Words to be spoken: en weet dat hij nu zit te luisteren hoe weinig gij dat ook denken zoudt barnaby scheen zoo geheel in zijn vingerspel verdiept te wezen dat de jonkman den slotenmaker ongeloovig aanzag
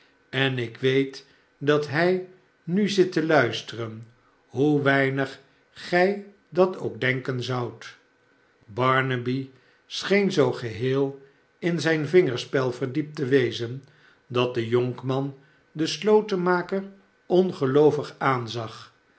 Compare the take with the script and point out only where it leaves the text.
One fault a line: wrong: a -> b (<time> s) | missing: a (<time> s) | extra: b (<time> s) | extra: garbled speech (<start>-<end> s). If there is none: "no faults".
extra: ik (0.6 s)